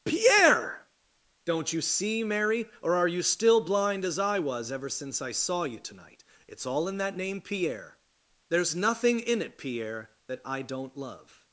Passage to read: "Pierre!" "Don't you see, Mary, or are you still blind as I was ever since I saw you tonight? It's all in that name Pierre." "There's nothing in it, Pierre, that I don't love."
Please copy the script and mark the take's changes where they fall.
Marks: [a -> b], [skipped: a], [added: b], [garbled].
"Pierre!" "Don't you see, Mary, or are you still blind as I was ever since I saw you tonight? It's all in that name Pierre." "There's nothing in it, Pierre, that I don't love."